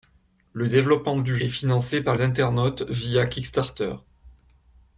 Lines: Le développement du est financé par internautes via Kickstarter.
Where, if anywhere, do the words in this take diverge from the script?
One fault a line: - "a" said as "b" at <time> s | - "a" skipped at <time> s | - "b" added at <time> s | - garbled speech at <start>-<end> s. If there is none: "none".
none